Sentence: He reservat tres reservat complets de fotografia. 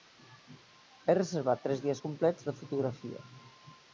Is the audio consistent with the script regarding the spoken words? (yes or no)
no